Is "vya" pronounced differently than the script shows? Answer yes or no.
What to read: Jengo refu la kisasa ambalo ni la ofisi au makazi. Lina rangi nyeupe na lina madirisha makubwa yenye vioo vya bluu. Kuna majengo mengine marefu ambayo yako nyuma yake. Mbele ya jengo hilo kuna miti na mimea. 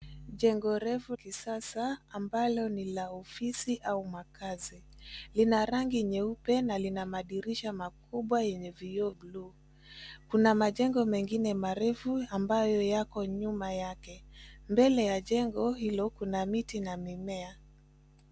yes